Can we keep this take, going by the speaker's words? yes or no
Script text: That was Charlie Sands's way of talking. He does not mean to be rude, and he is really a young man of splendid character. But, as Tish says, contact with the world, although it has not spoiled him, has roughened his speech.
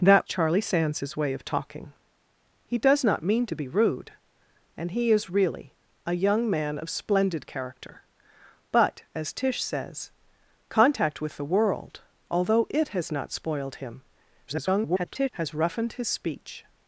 no